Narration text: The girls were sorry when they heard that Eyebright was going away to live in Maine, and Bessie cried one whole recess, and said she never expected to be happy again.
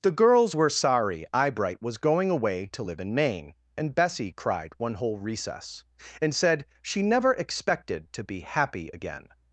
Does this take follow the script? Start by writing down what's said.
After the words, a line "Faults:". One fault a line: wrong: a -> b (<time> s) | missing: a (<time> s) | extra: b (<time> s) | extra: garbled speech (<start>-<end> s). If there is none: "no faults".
The girls were sorry Eyebright was going away to live in Maine, and Bessie cried one whole recess, and said she never expected to be happy again.
Faults:
missing: when they heard that (1.3 s)